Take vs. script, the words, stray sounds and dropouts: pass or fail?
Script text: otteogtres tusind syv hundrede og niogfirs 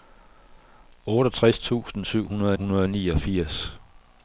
fail